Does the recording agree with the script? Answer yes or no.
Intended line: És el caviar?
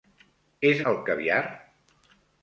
yes